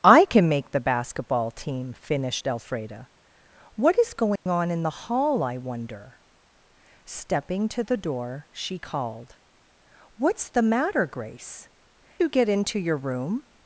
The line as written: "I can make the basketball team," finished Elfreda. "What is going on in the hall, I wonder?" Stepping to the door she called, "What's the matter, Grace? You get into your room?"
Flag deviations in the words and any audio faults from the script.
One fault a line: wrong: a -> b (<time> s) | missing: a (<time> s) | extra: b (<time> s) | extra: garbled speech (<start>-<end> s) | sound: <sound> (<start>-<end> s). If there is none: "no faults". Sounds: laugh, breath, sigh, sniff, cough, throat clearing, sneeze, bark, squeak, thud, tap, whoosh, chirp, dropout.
sound: dropout (4.4-4.5 s)